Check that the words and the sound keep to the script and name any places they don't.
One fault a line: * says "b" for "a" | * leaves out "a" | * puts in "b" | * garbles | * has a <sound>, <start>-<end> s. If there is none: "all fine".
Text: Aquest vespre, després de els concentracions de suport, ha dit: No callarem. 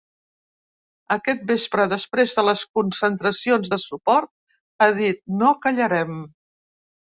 * says "les" for "els"